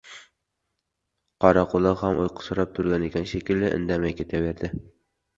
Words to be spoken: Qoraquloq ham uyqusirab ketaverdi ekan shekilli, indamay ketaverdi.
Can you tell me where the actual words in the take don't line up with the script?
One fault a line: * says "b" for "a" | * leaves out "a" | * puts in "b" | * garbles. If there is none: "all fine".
* says "turgan" for "ketaverdi"